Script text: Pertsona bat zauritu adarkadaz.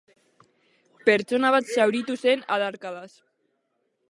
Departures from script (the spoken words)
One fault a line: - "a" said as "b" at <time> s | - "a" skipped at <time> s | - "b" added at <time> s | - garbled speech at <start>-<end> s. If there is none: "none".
- "zen" added at 2.2 s